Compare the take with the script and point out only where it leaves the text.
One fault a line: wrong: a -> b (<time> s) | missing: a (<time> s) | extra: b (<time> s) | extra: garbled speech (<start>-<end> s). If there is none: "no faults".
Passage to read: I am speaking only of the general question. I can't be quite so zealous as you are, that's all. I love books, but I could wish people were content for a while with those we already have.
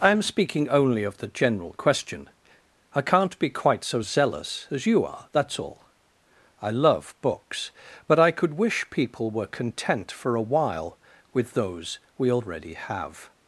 no faults